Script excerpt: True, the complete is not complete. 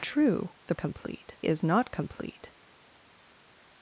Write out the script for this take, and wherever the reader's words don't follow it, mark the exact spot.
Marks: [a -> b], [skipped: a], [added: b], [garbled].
True, the complete is not complete.